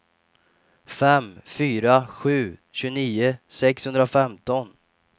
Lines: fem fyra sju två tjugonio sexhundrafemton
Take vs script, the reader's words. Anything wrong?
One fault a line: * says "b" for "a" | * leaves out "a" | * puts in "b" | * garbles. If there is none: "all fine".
* leaves out "två"